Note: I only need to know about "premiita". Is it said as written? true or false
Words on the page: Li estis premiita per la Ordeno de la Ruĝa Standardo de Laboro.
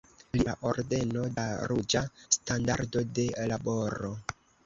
false